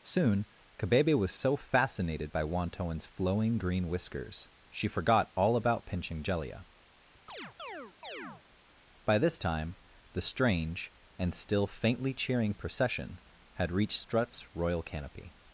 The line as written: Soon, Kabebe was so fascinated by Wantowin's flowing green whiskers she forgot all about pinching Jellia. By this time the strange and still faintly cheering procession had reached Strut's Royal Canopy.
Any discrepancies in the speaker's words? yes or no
no